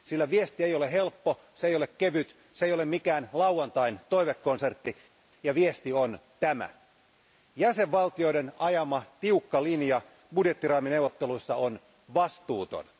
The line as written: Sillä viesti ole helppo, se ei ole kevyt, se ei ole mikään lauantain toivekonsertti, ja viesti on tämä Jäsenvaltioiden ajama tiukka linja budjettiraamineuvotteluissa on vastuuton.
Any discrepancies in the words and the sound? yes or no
yes